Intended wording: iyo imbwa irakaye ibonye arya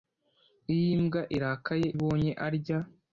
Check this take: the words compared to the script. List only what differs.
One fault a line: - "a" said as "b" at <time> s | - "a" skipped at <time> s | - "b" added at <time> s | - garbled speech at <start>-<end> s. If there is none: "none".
none